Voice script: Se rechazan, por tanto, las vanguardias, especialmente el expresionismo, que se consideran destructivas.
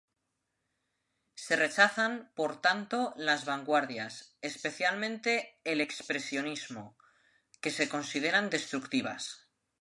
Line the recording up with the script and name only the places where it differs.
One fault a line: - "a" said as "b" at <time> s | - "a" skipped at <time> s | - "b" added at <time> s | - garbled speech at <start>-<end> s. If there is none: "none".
none